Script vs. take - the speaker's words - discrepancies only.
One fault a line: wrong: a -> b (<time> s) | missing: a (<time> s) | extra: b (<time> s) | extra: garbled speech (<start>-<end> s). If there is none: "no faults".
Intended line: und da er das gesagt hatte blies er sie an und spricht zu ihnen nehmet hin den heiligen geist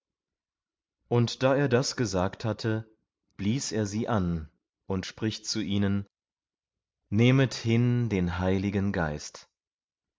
no faults